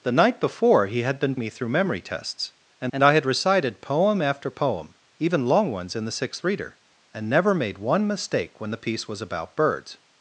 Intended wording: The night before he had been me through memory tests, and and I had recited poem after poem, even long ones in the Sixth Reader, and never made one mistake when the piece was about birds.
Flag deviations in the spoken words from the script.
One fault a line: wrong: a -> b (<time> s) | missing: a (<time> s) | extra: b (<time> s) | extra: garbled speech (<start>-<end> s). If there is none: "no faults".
no faults